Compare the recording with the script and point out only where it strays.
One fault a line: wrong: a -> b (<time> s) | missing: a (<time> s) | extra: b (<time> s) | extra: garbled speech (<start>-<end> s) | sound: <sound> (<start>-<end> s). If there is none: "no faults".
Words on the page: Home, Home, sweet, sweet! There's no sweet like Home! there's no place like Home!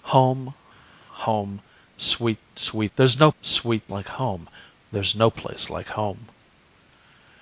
no faults